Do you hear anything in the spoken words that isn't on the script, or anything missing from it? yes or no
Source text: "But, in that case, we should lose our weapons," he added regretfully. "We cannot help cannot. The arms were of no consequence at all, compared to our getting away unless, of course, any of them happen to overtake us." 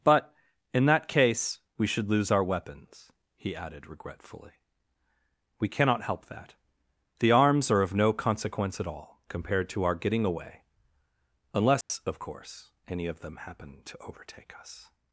yes